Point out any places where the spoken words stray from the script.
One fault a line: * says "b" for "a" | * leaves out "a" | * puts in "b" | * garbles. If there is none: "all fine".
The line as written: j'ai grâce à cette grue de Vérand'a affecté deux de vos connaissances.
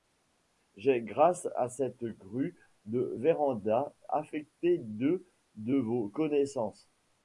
all fine